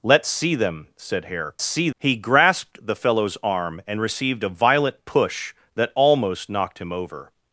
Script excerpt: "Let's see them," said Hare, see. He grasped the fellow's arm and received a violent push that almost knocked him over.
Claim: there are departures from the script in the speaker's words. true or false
false